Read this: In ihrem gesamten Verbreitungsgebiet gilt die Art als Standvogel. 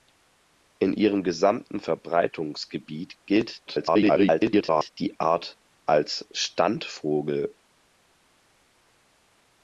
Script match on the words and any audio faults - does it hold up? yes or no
no